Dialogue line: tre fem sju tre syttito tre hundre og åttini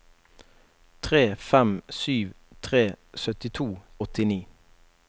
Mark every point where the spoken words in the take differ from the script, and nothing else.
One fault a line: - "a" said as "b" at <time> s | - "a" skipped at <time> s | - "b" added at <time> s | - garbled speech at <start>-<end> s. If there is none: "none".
- "tre hundre" skipped at 3.7 s